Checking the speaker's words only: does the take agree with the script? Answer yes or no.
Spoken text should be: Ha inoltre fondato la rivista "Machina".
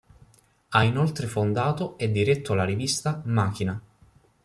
no